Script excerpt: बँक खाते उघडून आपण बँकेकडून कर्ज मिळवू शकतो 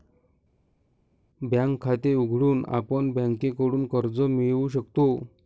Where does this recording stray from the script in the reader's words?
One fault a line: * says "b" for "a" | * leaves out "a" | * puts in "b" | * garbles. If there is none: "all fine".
all fine